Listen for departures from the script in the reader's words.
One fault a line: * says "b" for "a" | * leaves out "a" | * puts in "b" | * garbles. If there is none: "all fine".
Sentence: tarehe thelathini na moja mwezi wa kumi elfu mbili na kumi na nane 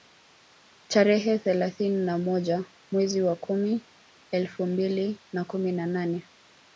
all fine